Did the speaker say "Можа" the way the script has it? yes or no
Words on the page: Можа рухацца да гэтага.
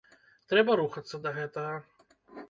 no